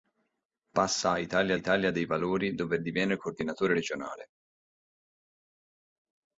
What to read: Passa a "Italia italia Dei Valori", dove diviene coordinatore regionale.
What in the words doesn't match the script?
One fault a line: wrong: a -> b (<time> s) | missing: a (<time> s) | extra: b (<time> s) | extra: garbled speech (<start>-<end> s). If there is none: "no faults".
no faults